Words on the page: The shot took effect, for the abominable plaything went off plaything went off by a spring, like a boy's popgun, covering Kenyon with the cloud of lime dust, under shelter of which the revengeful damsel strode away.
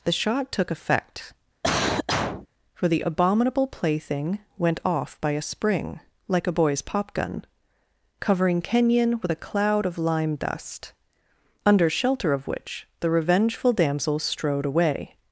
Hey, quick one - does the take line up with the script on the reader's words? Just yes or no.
no